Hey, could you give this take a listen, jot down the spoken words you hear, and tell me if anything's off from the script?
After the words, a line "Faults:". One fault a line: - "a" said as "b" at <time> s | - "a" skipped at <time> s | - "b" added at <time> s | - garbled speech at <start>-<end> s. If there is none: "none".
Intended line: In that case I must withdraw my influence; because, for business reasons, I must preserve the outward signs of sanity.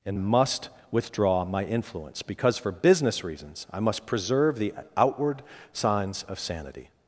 In must withdraw my influence; because, for business reasons, I must preserve the outward signs of sanity.
Faults:
- "that case I" skipped at 0.1 s